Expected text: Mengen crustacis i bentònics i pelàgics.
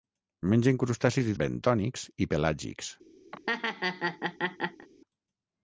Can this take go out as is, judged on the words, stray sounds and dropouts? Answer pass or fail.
fail